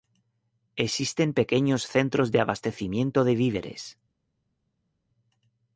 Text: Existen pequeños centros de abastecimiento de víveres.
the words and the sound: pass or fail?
pass